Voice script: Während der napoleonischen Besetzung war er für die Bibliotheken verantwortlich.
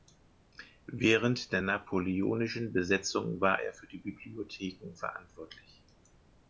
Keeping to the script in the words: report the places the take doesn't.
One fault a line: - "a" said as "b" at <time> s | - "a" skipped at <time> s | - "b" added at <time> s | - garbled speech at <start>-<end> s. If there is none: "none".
none